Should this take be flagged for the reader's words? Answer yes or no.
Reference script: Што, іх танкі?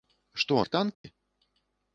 no